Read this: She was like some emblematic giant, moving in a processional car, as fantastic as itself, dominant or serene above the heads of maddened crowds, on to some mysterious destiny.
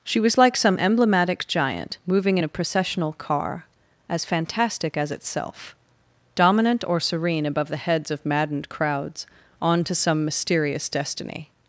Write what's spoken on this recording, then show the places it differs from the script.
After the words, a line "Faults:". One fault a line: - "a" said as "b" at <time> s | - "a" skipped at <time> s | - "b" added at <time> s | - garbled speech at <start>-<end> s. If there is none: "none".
She was like some emblematic giant, moving in a processional car, as fantastic as itself, dominant or serene above the heads of maddened crowds, on to some mysterious destiny.
Faults:
none